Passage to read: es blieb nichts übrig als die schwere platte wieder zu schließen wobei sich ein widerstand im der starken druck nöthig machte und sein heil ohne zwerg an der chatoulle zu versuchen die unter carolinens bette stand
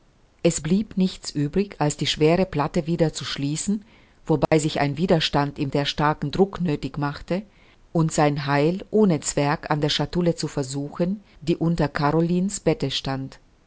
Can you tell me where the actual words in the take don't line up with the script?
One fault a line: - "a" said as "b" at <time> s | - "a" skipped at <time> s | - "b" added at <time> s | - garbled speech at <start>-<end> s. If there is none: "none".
none